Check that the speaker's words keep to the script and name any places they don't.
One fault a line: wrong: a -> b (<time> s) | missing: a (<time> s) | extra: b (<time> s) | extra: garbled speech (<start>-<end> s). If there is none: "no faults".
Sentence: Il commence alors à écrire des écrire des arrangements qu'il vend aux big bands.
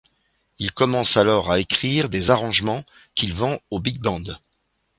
missing: écrire des (2.3 s)